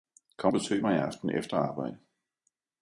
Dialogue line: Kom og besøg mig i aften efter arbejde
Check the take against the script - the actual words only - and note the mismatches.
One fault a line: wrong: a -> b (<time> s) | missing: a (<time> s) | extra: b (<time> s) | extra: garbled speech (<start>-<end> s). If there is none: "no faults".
missing: og (0.5 s)